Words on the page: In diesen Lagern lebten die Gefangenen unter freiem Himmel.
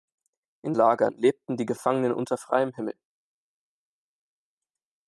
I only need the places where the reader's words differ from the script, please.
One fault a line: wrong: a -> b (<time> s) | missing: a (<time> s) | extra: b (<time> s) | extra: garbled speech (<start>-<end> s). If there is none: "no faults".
missing: diesen (0.7 s)